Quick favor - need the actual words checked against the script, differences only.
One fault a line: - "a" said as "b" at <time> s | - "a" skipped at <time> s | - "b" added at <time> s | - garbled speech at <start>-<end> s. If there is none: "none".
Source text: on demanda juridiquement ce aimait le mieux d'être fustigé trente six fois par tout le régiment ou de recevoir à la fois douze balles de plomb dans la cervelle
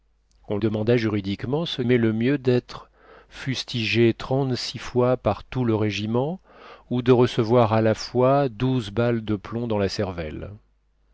none